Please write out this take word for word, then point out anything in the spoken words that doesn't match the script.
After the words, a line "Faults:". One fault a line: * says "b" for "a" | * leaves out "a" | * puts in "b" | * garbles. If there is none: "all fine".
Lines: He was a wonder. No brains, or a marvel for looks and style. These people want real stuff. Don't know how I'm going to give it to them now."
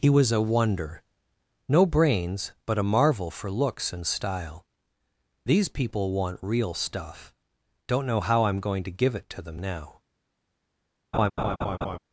He was a wonder. No brains, but a marvel for looks and style. These people want real stuff. Don't know how I'm going to give it to them now."
Faults:
* says "but" for "or"